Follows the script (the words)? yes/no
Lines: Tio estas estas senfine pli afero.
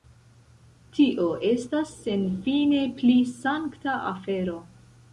no